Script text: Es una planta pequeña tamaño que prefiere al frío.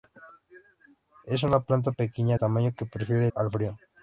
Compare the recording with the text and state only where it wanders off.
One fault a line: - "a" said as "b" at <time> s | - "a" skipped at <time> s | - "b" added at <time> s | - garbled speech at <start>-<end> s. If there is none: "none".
none